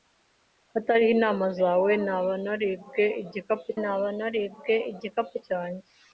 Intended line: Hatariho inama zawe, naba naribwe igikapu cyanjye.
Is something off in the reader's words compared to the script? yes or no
yes